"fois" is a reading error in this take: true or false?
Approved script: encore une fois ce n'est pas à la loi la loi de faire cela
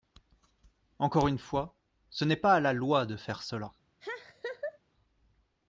false